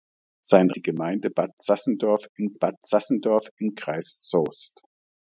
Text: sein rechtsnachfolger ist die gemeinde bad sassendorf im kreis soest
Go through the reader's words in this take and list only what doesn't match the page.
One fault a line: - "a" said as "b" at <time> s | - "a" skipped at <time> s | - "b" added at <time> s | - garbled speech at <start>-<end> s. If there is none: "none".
- "rechtsnachfolger ist die gemeinde" said as "die gemeinde bad sassendorf im" at 0.7 s